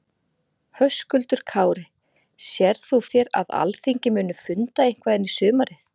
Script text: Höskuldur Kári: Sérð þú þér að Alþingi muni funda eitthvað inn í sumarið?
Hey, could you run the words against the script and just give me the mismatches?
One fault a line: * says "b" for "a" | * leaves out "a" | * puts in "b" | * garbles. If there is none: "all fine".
all fine